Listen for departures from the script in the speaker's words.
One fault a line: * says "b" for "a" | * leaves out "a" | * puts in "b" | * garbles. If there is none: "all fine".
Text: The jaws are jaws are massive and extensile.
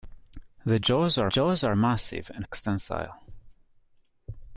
all fine